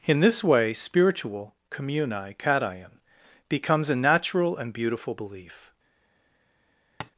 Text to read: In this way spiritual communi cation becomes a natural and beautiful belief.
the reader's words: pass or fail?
pass